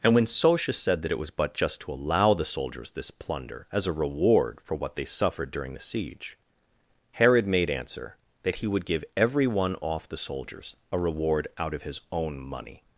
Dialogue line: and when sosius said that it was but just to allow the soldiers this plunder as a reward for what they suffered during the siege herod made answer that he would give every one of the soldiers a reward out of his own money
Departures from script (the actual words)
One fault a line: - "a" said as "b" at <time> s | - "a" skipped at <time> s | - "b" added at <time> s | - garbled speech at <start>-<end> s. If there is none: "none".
- "of" said as "off" at 9.8 s